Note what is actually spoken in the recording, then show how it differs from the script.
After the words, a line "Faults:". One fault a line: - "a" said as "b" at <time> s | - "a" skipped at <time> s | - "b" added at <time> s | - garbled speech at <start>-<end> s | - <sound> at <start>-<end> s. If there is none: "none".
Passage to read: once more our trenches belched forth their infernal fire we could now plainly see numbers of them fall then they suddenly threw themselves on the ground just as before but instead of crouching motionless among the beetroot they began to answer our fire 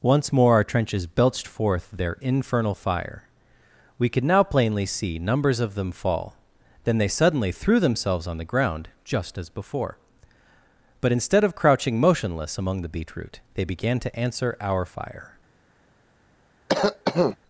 once more our trenches belched forth their infernal fire we could now plainly see numbers of them fall then they suddenly threw themselves on the ground just as before but instead of crouching motionless among the beetroot they began to answer our fire
Faults:
- cough at 16.7-17.4 s